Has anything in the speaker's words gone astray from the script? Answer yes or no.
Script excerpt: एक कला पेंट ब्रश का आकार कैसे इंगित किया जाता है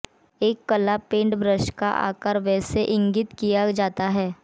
no